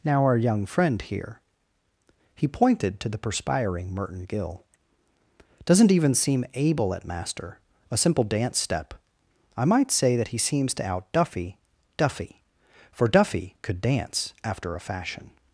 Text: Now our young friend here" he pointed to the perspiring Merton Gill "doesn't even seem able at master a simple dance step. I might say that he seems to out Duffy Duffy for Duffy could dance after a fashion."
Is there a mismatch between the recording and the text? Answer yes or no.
no